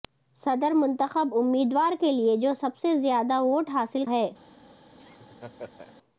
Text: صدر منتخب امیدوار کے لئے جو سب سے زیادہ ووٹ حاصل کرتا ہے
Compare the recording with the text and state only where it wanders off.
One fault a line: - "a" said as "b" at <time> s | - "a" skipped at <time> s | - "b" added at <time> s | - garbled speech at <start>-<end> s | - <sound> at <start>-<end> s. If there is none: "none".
- "کرتا" skipped at 4.0 s
- laugh at 5.0-6.0 s